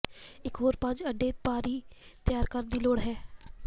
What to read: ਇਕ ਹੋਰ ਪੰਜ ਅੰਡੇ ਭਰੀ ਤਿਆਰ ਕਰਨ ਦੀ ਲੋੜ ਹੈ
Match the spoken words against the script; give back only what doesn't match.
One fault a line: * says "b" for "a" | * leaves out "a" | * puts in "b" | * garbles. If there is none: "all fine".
all fine